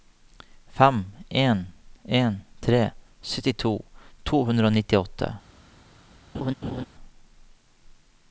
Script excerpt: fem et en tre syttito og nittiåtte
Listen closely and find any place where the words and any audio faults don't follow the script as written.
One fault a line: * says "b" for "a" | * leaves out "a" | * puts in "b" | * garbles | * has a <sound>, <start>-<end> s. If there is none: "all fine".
* says "en" for "et"
* puts in "to hundre"
* has a laugh, 6.3-6.9 s